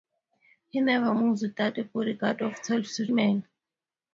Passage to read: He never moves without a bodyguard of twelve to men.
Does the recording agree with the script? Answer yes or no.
yes